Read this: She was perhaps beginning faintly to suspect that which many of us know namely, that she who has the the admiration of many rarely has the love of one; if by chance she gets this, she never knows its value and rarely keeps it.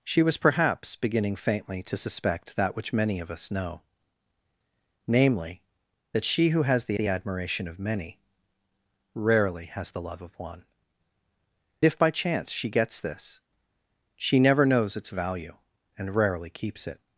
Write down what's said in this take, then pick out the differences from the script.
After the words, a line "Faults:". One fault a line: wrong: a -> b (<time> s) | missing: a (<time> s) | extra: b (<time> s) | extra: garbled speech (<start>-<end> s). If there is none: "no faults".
She was perhaps beginning faintly to suspect that which many of us know namely, that she who has the the admiration of many rarely has the love of one; if by chance she gets this, she never knows its value and rarely keeps it.
Faults:
no faults